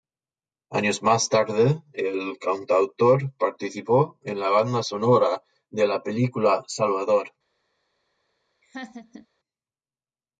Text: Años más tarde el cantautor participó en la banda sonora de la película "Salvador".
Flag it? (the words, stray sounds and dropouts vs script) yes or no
yes